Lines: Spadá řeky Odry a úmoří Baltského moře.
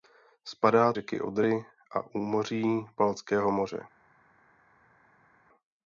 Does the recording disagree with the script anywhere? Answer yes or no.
no